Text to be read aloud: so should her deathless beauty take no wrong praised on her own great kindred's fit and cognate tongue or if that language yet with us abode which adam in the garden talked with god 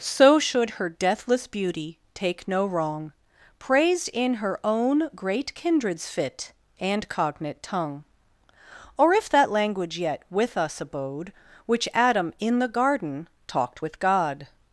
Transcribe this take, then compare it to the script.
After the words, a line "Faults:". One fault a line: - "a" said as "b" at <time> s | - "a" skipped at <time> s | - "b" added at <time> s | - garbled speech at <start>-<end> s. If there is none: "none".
so should her deathless beauty take no wrong praised in her own great kindred's fit and cognate tongue or if that language yet with us abode which adam in the garden talked with god
Faults:
- "on" said as "in" at 4.1 s